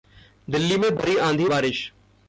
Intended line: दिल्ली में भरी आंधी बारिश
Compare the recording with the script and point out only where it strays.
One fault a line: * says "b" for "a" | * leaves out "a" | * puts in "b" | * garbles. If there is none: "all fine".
all fine